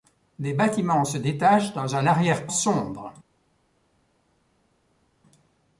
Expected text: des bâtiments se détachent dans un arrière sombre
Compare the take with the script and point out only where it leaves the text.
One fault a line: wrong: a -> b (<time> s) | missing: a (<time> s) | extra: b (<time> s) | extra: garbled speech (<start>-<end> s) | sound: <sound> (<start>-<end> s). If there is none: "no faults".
no faults